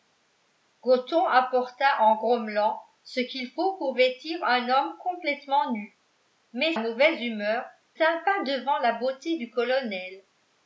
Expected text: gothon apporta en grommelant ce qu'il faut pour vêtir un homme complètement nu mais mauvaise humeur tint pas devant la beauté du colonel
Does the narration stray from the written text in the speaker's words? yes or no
no